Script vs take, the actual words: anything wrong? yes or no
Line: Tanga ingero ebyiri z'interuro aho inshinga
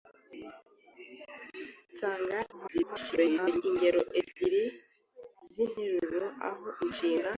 yes